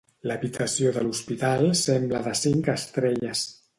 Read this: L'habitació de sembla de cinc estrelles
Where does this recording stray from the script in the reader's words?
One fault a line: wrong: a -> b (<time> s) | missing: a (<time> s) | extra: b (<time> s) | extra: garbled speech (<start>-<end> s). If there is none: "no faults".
extra: l'hospital (1.1 s)